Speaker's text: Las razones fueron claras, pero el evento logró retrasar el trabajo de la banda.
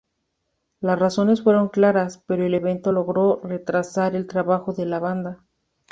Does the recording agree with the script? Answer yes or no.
yes